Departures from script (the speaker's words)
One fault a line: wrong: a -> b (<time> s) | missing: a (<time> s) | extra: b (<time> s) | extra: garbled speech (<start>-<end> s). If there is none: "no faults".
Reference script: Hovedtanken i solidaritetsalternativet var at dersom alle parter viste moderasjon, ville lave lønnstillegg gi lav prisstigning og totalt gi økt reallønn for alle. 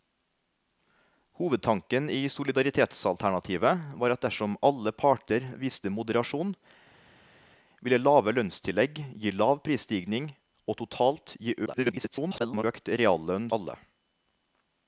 extra: garbled speech (11.7-12.6 s)
missing: for (13.5 s)